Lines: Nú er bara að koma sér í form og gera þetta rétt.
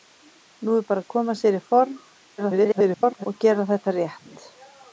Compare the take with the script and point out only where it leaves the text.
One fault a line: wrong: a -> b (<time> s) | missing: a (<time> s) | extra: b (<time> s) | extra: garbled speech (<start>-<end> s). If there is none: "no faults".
extra: garbled speech (2.4-3.3 s)